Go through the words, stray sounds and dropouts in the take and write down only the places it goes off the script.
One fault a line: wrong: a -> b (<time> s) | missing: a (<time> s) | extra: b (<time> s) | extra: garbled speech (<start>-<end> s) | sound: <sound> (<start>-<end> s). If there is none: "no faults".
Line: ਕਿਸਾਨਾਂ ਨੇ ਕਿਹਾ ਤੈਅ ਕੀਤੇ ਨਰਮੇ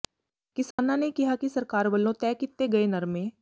sound: dropout (0.7-0.8 s)
extra: ਕਿ ਸਰਕਾਰ ਵੱਲੋਂ (1.4 s)
extra: ਗਏ (2.7 s)